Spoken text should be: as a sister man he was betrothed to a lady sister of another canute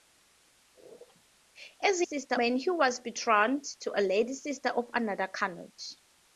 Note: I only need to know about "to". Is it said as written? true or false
true